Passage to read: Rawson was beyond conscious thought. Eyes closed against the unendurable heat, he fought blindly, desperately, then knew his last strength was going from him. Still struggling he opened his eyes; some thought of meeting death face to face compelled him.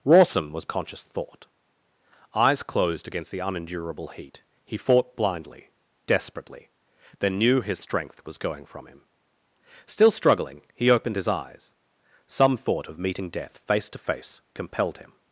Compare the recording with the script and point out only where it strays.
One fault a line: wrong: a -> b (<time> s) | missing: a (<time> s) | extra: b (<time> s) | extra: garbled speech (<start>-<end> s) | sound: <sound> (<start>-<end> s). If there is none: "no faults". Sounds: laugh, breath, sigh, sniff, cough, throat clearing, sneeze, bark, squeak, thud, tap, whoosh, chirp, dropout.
missing: beyond (0.7 s)
missing: last (7.8 s)